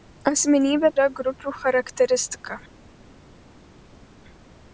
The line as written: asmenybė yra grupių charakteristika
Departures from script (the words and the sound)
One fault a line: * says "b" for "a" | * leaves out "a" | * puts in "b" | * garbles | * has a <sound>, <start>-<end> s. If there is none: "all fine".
all fine